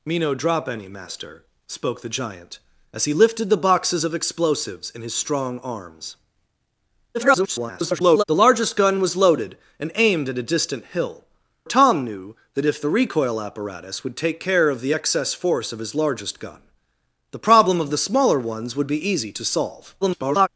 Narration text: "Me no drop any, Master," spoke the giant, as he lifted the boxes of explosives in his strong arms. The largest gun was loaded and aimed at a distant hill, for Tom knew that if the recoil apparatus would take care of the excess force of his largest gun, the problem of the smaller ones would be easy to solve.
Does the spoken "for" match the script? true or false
false